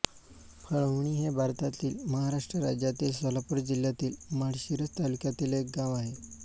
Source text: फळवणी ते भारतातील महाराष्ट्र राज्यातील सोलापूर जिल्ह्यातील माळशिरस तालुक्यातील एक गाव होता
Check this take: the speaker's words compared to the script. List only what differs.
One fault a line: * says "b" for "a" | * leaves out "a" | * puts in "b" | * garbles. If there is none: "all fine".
* says "हे" for "ते"
* says "आहे" for "होता"